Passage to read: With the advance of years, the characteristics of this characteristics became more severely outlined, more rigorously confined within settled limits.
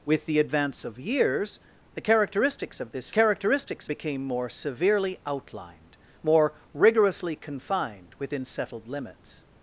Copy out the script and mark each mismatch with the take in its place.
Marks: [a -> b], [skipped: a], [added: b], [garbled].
With the advance of years, the characteristics of this characteristics became more severely outlined, more rigorously confined within settled limits.